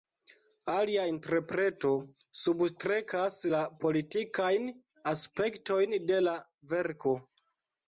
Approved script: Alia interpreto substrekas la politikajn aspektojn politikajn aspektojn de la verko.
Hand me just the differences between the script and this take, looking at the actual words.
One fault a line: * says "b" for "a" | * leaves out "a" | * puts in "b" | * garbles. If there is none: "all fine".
* leaves out "politikajn aspektojn"